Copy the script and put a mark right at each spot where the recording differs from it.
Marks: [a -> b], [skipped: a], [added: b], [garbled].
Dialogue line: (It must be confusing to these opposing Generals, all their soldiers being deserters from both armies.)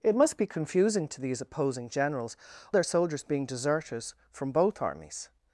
(It must be confusing to these opposing Generals, [skipped: all] their soldiers being deserters from both armies.)